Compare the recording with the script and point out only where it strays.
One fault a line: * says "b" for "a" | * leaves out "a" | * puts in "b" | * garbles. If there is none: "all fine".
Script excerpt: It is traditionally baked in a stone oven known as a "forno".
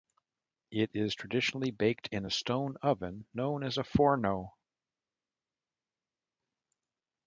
all fine